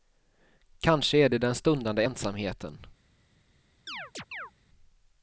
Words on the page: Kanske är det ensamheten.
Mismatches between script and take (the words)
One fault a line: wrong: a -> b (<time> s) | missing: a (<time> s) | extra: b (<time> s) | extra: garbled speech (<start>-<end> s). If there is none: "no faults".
extra: den stundande (1.4 s)